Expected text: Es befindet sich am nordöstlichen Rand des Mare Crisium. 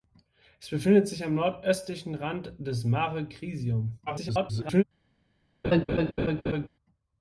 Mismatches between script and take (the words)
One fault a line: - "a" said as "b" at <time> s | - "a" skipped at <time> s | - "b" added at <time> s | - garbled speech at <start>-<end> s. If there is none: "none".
- garbled speech at 4.1-4.8 s